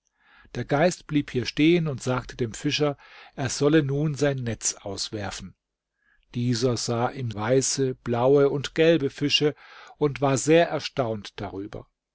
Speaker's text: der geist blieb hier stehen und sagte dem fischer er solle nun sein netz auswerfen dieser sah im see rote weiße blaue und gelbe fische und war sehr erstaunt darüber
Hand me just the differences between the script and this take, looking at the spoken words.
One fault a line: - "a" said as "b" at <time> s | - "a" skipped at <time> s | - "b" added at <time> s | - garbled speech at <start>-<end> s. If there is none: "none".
- "see rote" skipped at 7.3 s